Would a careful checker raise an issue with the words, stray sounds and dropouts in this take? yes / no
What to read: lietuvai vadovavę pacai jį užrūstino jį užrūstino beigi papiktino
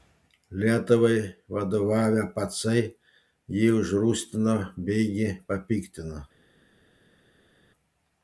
yes